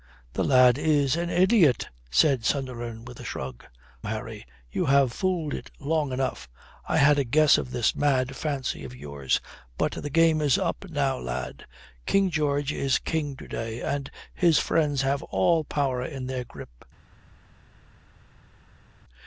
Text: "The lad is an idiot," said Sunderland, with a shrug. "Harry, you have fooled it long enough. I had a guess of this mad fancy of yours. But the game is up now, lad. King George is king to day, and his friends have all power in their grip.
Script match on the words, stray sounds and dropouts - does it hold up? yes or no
yes